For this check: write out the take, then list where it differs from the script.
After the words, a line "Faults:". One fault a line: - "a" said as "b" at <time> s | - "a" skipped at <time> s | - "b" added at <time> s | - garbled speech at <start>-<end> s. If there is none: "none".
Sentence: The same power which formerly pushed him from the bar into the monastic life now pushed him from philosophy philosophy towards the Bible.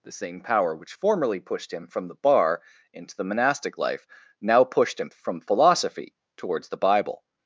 The same power which formerly pushed him from the bar into the monastic life now pushed him from philosophy towards the Bible.
Faults:
- "philosophy" skipped at 6.1 s